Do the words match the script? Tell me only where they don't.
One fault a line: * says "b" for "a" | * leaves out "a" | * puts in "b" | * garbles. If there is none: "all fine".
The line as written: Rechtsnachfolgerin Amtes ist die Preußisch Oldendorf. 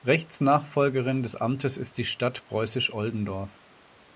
* puts in "des"
* puts in "Stadt"